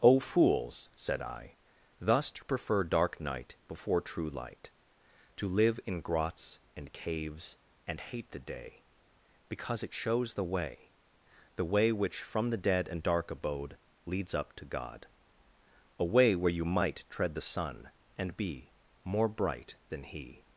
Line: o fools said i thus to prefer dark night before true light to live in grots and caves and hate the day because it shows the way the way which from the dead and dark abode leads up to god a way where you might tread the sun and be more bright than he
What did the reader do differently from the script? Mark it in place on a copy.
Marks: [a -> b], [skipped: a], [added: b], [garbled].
o fools said i thus to prefer dark night before true light to live in grots and caves and hate the day because it shows the way the way which from the dead and dark abode leads up to god a way where you might tread the sun and be more bright than he